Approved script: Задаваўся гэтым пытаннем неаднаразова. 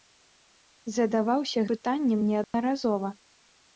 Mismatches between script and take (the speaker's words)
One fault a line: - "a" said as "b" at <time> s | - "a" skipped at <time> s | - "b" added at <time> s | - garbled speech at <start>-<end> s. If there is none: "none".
- "гэтым" skipped at 1.6 s